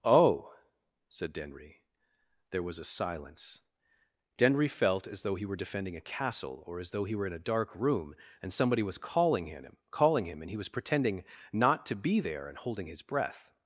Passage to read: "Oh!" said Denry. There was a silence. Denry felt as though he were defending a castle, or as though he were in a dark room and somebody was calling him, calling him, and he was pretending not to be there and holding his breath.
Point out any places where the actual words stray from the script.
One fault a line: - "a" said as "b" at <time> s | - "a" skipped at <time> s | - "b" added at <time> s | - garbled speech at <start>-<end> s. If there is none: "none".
none